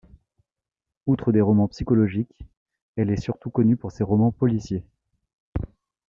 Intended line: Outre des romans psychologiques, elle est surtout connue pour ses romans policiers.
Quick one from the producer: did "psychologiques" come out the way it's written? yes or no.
yes